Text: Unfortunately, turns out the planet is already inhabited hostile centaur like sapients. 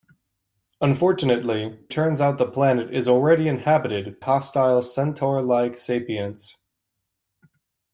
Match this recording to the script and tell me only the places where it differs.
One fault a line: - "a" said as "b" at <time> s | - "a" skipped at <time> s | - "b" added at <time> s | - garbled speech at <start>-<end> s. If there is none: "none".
none